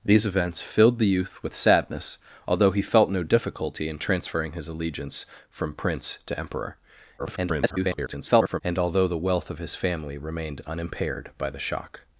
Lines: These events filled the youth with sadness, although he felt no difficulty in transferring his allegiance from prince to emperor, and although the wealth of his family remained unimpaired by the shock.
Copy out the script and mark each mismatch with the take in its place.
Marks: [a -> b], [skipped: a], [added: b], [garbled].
These events filled the youth with sadness, although he felt no difficulty in transferring his allegiance from prince to emperor, [garbled] and although the wealth of his family remained unimpaired by the shock.